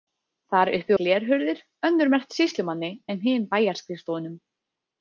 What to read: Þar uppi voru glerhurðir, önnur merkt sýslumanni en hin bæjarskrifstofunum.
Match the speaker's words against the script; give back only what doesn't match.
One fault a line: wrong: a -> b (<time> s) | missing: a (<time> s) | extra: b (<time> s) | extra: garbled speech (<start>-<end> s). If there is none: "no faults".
missing: voru (0.9 s)